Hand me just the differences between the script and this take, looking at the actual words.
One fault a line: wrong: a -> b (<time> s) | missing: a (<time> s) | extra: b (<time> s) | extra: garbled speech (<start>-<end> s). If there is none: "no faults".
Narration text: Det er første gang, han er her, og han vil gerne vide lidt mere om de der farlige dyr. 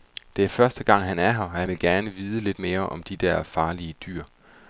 no faults